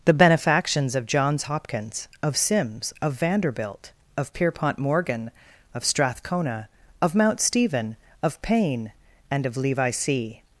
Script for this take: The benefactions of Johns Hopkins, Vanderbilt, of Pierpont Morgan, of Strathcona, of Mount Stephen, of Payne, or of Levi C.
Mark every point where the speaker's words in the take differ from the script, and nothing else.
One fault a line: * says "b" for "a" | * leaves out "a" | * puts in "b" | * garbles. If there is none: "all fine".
* puts in "of Sims of"
* says "and" for "or"